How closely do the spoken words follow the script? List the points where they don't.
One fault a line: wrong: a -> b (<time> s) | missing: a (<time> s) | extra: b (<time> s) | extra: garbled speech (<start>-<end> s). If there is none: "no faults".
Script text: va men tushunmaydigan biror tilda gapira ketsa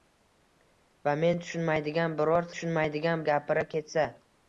wrong: tilda -> tushunmaydigan (2.5 s)